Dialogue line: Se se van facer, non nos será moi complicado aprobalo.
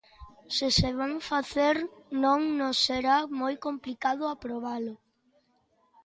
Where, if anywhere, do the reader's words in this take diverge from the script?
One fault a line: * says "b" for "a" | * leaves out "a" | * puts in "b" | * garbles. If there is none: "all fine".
all fine